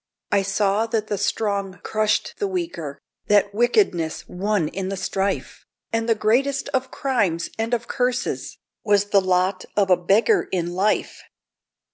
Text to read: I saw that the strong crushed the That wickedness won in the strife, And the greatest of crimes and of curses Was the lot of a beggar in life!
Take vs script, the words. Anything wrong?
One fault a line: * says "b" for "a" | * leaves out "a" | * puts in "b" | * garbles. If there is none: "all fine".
* puts in "weaker"